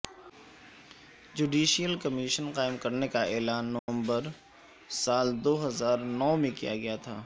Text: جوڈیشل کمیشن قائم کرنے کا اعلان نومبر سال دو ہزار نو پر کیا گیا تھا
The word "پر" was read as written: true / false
false